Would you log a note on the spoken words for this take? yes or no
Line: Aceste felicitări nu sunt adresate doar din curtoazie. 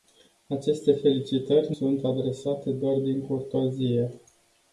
yes